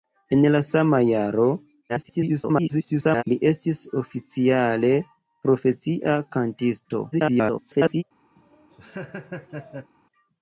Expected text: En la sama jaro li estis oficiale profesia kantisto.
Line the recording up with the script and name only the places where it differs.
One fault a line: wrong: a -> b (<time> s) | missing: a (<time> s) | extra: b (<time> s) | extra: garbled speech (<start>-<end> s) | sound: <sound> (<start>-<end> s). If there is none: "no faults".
extra: garbled speech (1.9-3.2 s)
extra: garbled speech (7.1-8.0 s)
sound: laugh (8.4-9.9 s)